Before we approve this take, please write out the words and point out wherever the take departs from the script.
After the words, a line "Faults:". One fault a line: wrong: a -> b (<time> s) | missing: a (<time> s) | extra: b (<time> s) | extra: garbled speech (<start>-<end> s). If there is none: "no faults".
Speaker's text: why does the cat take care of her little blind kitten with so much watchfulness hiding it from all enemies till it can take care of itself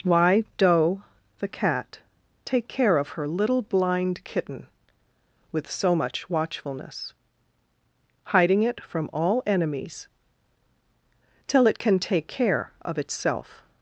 why doe the cat take care of her little blind kitten with so much watchfulness hiding it from all enemies till it can take care of itself
Faults:
wrong: does -> doe (0.6 s)